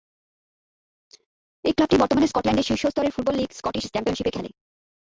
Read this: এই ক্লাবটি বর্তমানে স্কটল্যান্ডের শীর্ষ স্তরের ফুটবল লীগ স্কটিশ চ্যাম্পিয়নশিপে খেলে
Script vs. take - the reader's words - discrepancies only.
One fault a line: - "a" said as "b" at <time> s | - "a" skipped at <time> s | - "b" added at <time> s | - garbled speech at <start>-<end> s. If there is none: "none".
none